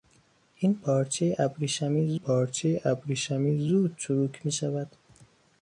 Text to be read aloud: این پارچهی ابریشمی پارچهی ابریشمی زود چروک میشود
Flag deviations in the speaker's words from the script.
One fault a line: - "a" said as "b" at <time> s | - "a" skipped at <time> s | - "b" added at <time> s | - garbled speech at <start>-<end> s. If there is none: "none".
none